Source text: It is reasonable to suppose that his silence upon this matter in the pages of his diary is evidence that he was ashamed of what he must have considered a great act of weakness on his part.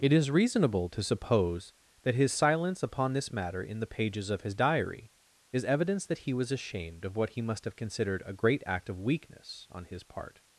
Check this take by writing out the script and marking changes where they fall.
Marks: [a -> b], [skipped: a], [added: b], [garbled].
It is reasonable to suppose that his silence upon this matter in the pages of his diary is evidence that he was ashamed of what he must have considered a great act of weakness on his part.